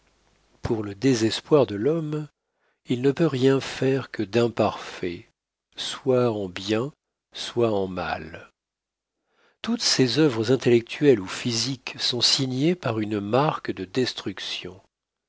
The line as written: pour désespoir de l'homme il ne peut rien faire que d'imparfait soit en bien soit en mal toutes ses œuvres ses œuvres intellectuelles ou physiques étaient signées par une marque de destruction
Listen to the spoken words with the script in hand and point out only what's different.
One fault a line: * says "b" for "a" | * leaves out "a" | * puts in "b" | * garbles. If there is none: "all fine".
* puts in "le"
* leaves out "ses œuvres"
* says "sont" for "étaient"